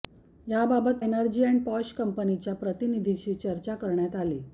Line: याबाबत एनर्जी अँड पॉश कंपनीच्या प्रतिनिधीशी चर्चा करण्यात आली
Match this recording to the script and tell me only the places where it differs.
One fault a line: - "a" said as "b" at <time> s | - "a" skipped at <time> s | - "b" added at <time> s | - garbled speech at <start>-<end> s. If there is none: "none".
none